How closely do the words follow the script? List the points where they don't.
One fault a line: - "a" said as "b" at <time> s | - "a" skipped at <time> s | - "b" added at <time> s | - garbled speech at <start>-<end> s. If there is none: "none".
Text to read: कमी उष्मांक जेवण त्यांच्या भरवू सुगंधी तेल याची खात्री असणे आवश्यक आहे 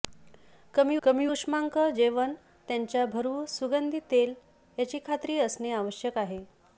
- "कमी" added at 1.0 s